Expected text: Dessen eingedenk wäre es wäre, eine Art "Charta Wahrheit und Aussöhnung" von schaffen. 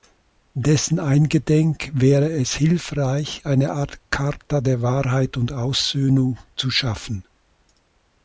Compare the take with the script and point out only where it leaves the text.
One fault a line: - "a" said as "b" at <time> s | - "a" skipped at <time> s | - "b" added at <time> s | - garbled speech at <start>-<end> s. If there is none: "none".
- "wäre" said as "hilfreich" at 2.5 s
- "der" added at 4.6 s
- "von" said as "zu" at 6.5 s